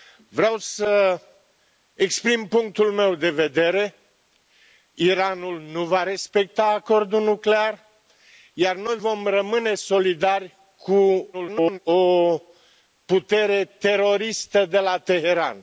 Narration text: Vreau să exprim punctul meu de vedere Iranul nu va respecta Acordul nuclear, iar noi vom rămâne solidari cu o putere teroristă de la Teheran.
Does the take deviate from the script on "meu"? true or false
false